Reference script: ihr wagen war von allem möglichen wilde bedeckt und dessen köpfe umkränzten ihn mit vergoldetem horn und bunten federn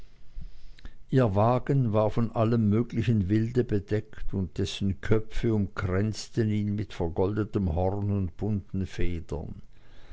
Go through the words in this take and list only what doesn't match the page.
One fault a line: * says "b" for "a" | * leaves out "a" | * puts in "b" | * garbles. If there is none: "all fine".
all fine